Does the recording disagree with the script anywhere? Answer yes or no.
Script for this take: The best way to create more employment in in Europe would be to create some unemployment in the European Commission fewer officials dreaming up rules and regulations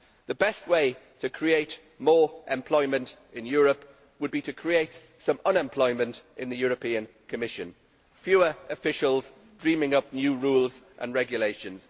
yes